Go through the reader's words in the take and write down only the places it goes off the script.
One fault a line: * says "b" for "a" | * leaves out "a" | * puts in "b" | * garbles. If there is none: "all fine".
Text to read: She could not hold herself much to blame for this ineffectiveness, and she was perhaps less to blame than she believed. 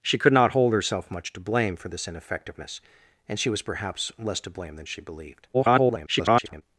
* garbles